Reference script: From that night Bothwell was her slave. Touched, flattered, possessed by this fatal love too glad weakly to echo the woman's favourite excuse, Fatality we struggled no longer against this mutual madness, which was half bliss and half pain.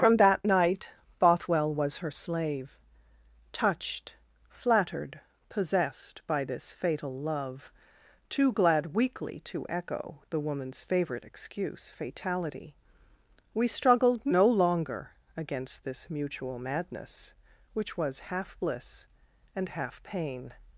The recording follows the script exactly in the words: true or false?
true